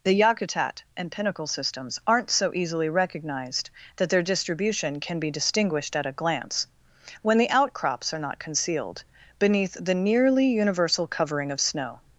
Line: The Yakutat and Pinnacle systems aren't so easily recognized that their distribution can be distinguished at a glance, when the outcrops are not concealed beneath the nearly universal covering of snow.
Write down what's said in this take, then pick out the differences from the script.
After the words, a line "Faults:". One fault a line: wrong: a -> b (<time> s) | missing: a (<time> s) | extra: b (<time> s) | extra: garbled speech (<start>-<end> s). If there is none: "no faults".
The Yakutat and Pinnacle systems aren't so easily recognized that their distribution can be distinguished at a glance, when the outcrops are not concealed beneath the nearly universal covering of snow.
Faults:
no faults